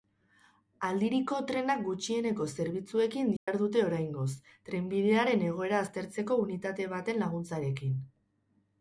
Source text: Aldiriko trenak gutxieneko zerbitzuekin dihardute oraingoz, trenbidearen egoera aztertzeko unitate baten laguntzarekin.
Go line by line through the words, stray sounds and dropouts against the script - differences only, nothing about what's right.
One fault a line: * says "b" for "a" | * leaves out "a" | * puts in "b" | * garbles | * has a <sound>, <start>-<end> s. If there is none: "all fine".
* has a dropout, 3.4-3.5 s